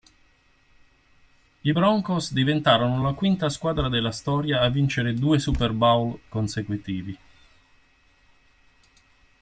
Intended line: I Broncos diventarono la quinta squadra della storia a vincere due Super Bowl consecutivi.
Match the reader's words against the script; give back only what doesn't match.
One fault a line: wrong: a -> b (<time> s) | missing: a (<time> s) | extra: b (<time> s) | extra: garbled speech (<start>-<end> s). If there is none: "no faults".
no faults